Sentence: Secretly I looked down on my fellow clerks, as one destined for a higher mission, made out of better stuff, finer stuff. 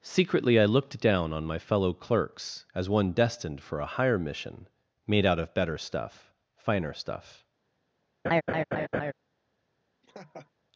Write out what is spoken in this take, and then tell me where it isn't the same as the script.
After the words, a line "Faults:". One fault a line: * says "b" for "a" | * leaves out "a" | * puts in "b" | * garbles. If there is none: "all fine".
Secretly I looked down on my fellow clerks, as one destined for a higher mission, made out of better stuff, finer stuff.
Faults:
all fine